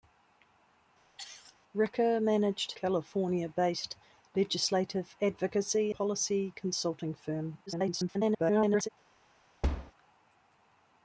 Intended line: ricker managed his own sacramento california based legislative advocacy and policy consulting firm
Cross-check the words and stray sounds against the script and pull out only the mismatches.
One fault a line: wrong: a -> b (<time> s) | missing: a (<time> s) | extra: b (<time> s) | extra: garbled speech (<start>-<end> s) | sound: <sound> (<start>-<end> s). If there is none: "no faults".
sound: cough (1.2-1.6 s)
missing: his own sacramento (2.7 s)
missing: and (5.9 s)
extra: garbled speech (7.7-8.9 s)
sound: thud (9.6-9.9 s)